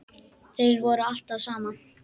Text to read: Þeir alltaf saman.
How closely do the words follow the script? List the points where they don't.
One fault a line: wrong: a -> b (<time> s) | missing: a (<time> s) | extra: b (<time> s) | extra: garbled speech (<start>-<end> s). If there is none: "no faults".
extra: voru (0.8 s)